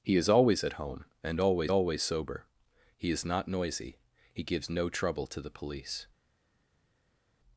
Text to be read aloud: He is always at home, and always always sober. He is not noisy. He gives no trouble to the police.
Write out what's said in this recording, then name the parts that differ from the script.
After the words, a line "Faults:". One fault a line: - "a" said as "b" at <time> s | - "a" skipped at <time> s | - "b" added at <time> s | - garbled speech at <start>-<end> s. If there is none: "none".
He is always at home, and always always sober. He is not noisy. He gives no trouble to the police.
Faults:
none